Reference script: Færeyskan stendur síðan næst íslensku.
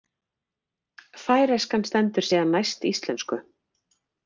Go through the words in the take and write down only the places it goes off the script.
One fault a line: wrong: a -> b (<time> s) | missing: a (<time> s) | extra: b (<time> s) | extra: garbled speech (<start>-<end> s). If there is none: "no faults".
no faults